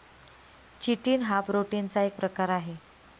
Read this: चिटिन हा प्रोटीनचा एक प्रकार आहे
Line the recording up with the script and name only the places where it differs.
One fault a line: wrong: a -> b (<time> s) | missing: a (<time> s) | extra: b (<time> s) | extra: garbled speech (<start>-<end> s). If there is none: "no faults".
no faults